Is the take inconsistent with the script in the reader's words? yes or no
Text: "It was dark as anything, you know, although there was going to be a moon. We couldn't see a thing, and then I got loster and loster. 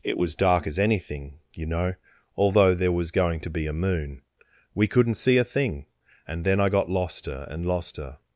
no